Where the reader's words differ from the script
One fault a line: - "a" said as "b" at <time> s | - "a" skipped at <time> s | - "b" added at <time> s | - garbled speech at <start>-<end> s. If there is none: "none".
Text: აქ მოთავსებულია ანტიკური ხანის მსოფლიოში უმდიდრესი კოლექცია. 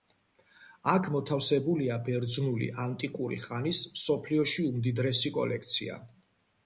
- "ბერძნული" added at 2.1 s